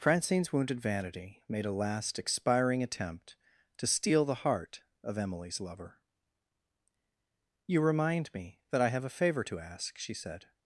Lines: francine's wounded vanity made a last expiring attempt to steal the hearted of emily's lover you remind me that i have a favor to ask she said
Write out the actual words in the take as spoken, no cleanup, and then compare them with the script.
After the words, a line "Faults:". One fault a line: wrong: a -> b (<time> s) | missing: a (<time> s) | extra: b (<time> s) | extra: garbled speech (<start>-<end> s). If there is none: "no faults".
francine's wounded vanity made a last expiring attempt to steal the heart of emily's lover you remind me that i have a favor to ask she said
Faults:
wrong: hearted -> heart (4.4 s)